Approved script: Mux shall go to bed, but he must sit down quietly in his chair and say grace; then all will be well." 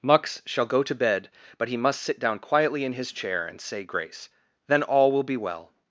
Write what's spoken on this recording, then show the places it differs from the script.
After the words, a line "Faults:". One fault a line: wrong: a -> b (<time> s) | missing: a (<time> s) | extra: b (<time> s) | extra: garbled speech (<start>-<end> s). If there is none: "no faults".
Mux shall go to bed, but he must sit down quietly in his chair and say grace; then all will be well."
Faults:
no faults